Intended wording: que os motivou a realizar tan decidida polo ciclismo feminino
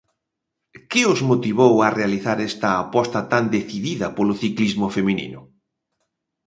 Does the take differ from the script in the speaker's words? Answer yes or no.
yes